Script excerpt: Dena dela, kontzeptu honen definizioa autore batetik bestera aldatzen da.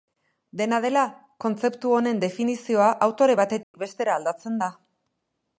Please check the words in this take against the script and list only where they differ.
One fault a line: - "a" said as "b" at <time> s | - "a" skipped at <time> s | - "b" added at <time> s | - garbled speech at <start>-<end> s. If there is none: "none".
none